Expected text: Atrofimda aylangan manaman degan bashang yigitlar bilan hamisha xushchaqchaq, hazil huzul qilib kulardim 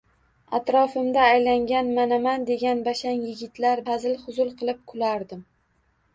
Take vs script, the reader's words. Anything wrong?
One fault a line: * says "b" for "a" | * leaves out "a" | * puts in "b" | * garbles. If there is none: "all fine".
* leaves out "bilan hamisha xushchaqchaq"